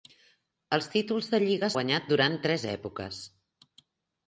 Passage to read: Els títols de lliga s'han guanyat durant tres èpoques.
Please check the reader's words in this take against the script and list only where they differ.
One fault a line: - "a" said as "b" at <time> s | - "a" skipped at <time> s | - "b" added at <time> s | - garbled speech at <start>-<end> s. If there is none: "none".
- "s'han" skipped at 1.7 s